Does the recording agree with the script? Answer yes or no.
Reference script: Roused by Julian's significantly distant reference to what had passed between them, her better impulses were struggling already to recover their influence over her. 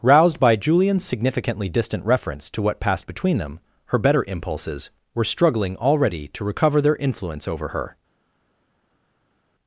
no